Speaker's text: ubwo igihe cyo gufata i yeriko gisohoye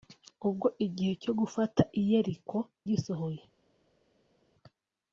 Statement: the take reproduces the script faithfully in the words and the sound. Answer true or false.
true